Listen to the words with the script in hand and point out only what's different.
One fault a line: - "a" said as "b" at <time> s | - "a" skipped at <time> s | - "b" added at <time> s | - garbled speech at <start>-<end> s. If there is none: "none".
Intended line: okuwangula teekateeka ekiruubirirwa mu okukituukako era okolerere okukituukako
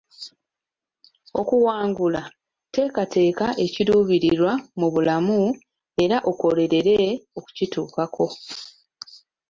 - "okukituukako" said as "bulamu" at 4.9 s